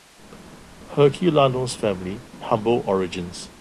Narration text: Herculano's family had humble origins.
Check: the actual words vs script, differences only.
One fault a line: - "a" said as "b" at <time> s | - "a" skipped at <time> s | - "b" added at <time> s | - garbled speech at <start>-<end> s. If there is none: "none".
- "had" skipped at 2.2 s